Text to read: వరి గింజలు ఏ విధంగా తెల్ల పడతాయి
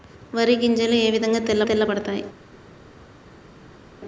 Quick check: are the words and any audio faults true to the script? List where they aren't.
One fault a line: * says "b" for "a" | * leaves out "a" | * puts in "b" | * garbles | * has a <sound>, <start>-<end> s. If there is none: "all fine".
* puts in "తెల్ల"